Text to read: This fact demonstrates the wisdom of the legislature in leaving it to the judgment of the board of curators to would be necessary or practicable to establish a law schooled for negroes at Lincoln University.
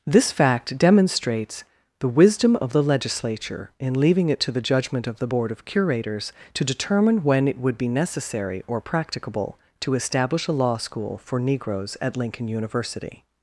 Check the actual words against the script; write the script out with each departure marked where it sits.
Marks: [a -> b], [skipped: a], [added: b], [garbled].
This fact demonstrates the wisdom of the legislature in leaving it to the judgment of the board of curators to [added: determine when it] would be necessary or practicable to establish a law [schooled -> school] for negroes at Lincoln University.